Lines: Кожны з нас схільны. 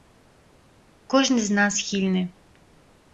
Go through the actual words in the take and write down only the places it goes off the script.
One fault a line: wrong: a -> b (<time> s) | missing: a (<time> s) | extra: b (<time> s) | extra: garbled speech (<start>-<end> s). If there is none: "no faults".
no faults